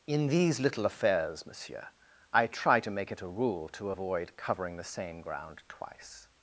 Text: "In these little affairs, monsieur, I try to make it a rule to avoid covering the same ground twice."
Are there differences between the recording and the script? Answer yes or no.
no